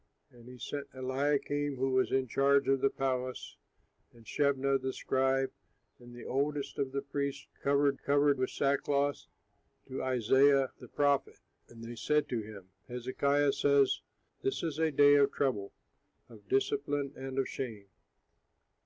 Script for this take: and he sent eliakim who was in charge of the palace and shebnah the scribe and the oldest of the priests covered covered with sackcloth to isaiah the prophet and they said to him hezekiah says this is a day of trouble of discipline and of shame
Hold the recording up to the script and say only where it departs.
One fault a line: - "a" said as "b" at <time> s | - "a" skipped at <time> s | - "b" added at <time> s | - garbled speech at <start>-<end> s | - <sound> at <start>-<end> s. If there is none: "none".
none